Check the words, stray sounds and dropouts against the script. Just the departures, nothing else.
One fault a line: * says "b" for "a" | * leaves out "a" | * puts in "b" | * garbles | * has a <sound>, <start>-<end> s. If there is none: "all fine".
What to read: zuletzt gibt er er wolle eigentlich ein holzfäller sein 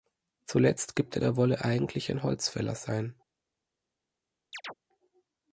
* has a chirp, 4.5-4.7 s